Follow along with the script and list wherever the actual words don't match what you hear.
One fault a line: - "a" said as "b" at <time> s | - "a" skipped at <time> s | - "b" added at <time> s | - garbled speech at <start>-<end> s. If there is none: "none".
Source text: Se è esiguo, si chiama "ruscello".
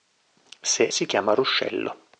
- "è esiguo" skipped at 0.9 s